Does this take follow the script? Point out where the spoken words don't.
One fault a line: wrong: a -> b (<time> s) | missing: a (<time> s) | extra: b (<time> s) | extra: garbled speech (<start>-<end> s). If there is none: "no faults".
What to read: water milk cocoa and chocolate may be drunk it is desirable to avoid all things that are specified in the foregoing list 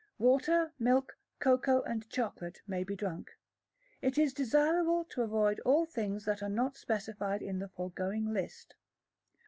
extra: not (6.5 s)